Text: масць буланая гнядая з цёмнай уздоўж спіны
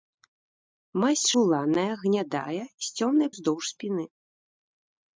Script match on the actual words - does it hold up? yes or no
yes